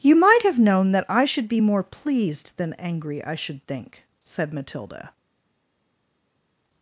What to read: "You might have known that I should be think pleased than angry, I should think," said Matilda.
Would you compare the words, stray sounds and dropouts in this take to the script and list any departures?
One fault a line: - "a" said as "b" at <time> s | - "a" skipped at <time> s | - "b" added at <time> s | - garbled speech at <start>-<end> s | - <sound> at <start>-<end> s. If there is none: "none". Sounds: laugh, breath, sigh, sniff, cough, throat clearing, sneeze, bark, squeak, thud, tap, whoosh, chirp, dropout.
- "think" said as "more" at 1.6 s